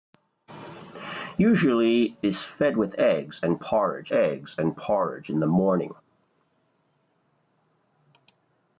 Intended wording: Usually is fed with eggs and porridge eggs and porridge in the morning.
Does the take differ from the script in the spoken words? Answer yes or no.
no